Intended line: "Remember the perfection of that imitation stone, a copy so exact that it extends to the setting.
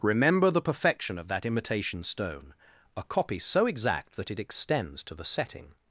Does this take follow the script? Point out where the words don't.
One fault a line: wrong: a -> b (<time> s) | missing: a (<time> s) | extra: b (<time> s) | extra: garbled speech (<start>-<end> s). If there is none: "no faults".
no faults